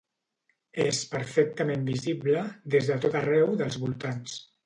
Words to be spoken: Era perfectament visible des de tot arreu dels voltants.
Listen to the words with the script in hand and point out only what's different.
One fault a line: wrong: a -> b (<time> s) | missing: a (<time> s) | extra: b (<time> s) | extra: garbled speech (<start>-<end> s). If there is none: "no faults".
wrong: Era -> És (0.8 s)